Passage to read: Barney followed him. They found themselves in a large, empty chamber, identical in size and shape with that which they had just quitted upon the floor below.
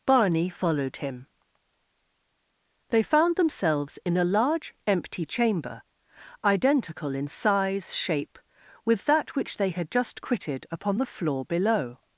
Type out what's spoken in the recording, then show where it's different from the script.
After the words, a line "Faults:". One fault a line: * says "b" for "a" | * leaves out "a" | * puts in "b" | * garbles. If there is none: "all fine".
Barney followed him. They found themselves in a large, empty chamber, identical in size shape with that which they had just quitted upon the floor below.
Faults:
* leaves out "and"